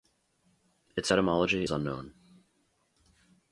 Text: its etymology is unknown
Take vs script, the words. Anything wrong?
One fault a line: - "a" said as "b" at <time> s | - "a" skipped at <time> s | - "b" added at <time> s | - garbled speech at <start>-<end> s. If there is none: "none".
- "is" skipped at 1.7 s